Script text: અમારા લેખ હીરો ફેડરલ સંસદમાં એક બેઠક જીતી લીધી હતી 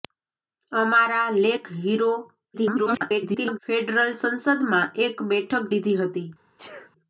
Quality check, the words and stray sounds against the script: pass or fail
fail